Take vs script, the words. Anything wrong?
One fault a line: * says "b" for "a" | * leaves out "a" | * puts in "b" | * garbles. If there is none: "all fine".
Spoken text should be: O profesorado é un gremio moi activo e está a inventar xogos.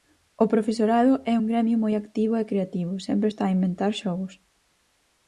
* puts in "creativo sempre"